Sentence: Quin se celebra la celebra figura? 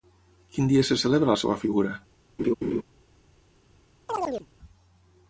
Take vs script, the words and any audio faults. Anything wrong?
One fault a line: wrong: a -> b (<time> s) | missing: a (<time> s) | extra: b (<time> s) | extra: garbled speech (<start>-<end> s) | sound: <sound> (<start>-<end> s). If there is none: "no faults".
extra: dia (0.7 s)
wrong: celebra -> seva (1.4 s)
sound: laugh (2.4-2.8 s)
sound: chirp (4.1-4.5 s)